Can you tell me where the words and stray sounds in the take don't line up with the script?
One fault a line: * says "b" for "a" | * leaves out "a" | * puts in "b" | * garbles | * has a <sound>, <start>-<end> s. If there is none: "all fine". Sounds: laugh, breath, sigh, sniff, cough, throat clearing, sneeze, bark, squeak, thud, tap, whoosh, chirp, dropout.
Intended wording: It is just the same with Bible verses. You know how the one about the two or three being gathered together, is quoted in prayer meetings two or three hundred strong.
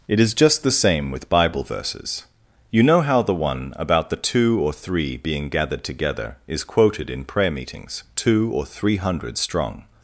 all fine